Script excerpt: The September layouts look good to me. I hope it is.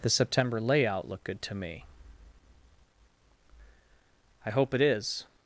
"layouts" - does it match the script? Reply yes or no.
no